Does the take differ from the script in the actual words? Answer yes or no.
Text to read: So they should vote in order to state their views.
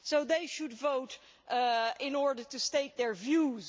no